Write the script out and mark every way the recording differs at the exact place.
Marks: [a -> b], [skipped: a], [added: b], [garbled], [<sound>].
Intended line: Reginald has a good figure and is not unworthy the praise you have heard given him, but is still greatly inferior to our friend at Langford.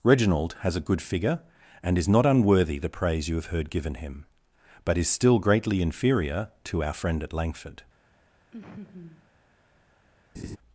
Reginald has a good figure and is not unworthy the praise you have heard given him, but is still greatly inferior to our friend at Langford. [laugh] [laugh]